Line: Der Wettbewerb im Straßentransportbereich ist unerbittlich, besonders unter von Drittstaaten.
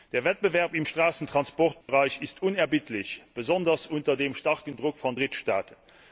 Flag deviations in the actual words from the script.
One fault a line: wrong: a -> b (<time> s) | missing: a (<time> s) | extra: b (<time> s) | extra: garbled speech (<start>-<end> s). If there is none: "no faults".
extra: dem starken Druck (4.2 s)